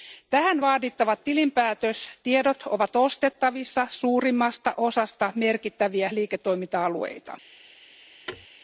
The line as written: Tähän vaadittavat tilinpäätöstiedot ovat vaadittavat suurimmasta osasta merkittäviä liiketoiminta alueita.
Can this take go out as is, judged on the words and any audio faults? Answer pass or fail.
fail